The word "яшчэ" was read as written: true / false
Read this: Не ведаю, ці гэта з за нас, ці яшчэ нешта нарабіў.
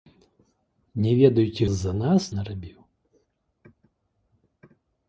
false